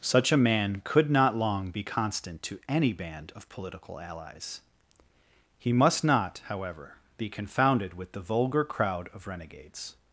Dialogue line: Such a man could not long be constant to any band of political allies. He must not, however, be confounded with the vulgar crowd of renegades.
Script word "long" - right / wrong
right